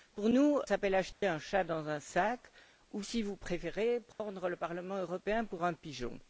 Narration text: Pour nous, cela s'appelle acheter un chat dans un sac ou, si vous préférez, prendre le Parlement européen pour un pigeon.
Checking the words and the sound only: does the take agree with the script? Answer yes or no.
no